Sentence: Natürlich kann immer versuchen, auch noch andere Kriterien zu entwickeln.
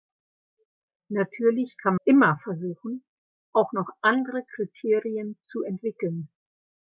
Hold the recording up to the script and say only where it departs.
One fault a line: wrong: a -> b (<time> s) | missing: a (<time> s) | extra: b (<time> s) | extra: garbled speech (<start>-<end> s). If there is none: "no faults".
no faults